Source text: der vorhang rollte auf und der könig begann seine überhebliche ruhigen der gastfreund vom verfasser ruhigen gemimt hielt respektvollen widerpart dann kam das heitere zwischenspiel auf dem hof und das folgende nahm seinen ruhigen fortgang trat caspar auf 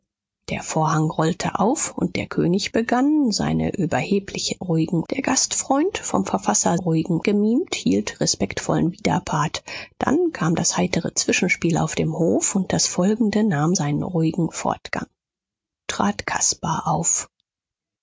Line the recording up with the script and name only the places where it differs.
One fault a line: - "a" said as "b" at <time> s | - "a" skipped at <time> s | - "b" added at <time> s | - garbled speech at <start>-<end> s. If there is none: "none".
none